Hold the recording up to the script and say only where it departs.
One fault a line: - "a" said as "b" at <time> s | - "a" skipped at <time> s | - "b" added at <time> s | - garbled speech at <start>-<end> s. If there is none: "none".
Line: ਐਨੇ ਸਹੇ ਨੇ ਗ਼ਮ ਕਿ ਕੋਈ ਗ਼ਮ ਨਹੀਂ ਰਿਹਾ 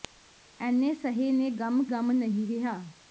- "ਕਿ ਕੋਈ" skipped at 1.8 s